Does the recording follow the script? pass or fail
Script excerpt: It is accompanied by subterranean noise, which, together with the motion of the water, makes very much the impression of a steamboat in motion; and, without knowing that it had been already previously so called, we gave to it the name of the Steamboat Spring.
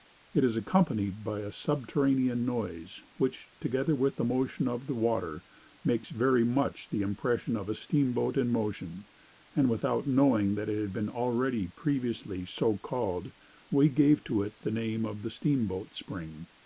fail